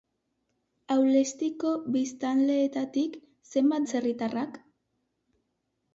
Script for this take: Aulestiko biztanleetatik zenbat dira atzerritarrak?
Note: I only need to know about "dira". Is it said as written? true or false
false